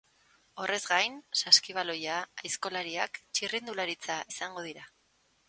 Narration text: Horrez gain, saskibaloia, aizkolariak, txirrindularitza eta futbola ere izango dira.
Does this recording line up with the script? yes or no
no